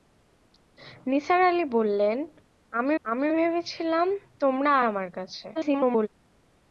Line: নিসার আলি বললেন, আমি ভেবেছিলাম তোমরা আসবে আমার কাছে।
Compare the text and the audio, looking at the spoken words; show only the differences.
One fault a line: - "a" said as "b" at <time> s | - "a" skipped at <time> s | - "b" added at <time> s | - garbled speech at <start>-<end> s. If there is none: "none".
- "আমি" added at 3.1 s
- "আসবে" skipped at 4.7 s
- garbled speech at 5.5-6.1 s